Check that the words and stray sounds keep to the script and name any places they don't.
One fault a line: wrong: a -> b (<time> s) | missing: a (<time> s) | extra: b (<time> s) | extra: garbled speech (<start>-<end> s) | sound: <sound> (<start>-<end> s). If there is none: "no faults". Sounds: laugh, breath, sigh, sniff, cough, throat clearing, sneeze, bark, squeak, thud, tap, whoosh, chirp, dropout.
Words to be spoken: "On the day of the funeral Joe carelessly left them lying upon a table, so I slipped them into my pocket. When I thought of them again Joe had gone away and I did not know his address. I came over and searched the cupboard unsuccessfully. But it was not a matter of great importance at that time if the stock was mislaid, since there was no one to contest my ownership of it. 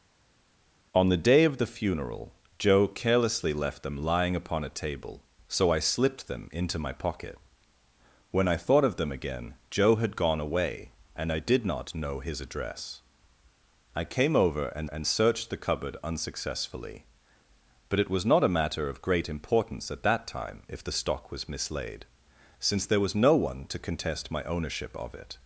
extra: and (14.8 s)